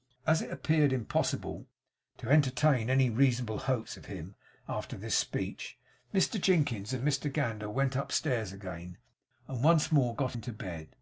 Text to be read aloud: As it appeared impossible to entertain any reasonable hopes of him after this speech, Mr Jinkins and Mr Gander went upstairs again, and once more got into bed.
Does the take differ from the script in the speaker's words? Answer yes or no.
no